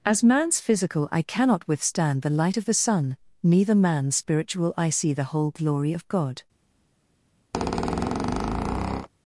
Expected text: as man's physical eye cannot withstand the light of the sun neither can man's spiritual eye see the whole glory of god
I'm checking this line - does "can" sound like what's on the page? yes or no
no